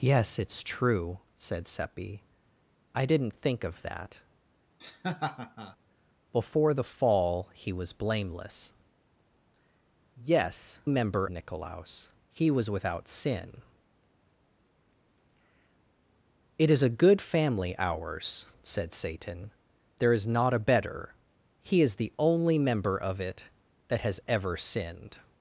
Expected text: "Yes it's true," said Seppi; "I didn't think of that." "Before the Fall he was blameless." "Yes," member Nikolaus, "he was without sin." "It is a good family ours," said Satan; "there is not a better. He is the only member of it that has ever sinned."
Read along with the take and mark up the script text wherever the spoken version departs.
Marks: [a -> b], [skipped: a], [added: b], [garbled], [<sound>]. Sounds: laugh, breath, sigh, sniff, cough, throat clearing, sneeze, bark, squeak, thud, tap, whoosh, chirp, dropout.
"Yes it's true," said Seppi; "I didn't think of that." [laugh] "Before the Fall he was blameless." "Yes," member Nikolaus, "he was without sin." "It is a good family ours," said Satan; "there is not a better. He is the only member of it that has ever sinned."